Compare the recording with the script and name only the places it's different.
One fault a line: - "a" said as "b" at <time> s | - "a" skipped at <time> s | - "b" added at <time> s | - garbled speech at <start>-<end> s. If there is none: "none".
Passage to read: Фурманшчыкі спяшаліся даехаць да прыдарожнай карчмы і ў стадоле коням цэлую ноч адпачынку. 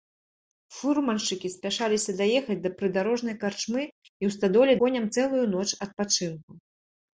none